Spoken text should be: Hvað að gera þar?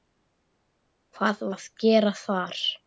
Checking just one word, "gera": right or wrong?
right